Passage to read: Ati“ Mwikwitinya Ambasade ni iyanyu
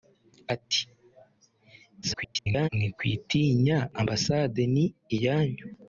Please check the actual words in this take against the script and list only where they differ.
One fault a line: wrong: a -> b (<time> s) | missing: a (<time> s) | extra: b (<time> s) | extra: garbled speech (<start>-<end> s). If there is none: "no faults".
extra: garbled speech (2.0-2.7 s)